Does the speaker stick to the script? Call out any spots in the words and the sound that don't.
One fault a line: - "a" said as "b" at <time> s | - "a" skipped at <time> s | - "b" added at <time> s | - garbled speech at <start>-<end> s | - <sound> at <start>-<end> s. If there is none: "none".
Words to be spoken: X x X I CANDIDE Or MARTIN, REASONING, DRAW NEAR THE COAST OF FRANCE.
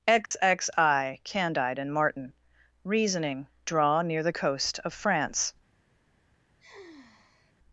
- dropout at 0.3-0.3 s
- "X" skipped at 0.7 s
- "Or" said as "AND" at 1.8 s
- sigh at 6.6-7.5 s